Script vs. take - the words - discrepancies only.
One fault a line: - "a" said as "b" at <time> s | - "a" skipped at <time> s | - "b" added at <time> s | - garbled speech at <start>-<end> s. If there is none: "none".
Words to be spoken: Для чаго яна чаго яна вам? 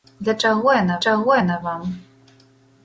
none